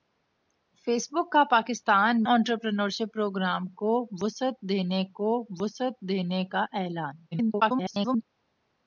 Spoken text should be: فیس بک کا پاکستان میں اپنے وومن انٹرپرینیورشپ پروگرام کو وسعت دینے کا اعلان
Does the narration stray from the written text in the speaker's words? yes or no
yes